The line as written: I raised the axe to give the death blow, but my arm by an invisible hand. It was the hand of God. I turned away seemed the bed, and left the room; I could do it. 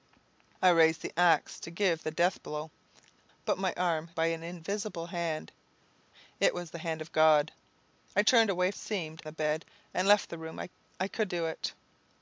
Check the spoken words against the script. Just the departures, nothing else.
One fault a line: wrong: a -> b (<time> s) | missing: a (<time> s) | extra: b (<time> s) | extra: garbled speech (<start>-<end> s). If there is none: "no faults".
no faults